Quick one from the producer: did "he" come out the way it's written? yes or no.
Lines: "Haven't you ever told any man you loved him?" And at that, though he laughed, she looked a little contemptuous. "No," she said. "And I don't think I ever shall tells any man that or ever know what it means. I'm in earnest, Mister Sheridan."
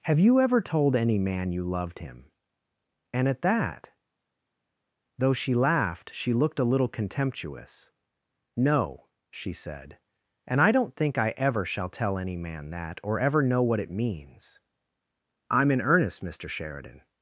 no